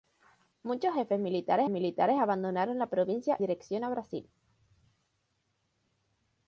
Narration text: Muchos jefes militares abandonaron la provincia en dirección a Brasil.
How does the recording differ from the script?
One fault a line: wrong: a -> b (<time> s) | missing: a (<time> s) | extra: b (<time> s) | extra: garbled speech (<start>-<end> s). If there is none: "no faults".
extra: militares (1.7 s)
missing: en (3.4 s)